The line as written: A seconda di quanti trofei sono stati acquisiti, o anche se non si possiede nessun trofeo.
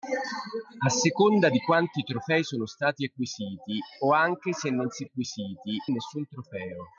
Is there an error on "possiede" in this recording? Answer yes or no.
yes